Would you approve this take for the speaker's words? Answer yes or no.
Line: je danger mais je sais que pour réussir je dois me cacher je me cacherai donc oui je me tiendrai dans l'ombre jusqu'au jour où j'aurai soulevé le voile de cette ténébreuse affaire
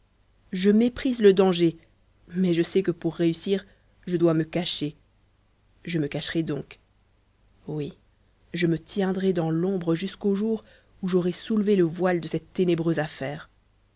no